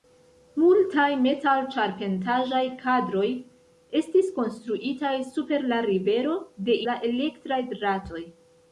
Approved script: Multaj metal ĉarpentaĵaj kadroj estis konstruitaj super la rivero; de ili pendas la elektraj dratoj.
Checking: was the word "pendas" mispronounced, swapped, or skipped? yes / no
yes